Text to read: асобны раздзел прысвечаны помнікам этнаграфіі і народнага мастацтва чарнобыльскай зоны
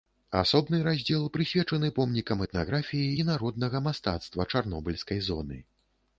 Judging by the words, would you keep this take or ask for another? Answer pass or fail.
pass